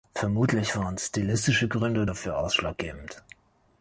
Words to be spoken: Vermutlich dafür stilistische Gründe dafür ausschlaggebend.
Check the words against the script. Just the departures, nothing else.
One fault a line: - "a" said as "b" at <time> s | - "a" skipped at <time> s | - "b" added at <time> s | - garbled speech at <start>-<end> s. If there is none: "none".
- "dafür" said as "waren" at 0.8 s